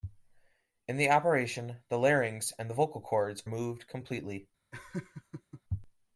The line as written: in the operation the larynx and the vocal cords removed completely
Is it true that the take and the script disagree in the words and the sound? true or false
true